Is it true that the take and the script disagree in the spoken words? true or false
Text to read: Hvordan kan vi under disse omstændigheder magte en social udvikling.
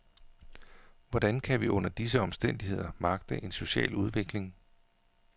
false